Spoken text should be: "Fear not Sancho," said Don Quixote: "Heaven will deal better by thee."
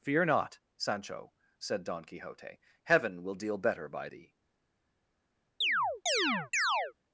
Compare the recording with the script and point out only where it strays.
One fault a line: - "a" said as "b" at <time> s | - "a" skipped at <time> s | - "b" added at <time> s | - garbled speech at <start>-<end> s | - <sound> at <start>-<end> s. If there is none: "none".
- chirp at 5.6-6.9 s